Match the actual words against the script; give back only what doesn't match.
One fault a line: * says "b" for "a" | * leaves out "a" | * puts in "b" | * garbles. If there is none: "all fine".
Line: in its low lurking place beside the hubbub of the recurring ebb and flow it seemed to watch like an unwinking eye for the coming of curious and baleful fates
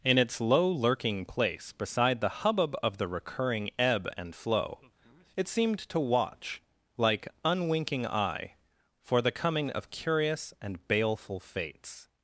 * leaves out "an"